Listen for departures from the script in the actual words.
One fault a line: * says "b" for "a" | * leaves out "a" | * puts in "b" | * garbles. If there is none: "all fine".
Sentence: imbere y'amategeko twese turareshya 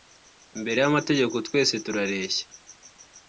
all fine